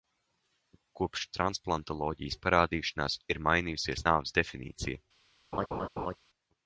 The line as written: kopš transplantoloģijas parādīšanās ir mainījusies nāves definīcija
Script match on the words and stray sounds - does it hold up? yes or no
no